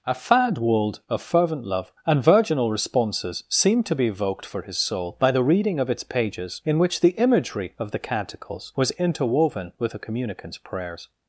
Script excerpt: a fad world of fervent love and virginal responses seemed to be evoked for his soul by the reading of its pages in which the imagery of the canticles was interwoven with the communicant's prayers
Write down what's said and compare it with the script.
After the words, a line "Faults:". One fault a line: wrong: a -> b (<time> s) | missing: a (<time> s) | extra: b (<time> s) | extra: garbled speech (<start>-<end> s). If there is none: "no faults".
a fad world of fervent love and virginal responses seemed to be evoked for his soul by the reading of its pages in which the imagery of the canticles was interwoven with the communicant's prayers
Faults:
no faults